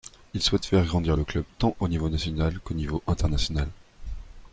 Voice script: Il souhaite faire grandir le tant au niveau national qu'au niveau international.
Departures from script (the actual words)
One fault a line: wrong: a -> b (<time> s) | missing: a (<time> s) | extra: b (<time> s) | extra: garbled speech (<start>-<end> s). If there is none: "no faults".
extra: club (1.2 s)